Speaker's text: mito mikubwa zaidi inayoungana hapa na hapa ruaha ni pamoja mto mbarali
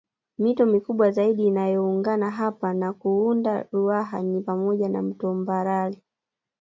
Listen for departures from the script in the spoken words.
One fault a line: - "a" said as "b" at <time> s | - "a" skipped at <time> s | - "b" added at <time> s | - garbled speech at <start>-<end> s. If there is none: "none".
- "hapa" said as "kuunda" at 2.9 s
- "na" added at 4.9 s